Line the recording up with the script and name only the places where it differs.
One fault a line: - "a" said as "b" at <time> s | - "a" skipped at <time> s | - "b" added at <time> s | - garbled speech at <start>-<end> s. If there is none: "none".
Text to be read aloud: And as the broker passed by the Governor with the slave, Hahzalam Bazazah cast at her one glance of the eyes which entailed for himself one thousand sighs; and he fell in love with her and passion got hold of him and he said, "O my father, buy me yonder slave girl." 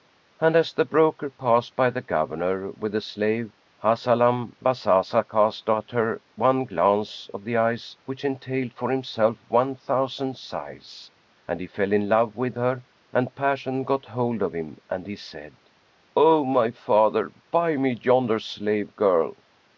none